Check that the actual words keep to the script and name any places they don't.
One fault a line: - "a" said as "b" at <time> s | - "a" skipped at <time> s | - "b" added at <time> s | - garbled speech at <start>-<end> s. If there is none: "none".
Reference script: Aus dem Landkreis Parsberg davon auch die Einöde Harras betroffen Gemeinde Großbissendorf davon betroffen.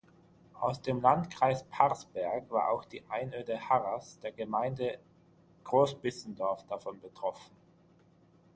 - "davon" said as "war" at 2.5 s
- "betroffen" said as "der" at 4.2 s